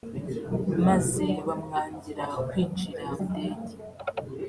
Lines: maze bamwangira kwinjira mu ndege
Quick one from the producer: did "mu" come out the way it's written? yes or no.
no